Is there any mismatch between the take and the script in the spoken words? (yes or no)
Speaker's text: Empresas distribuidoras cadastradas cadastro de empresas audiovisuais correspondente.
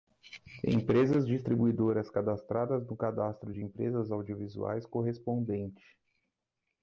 yes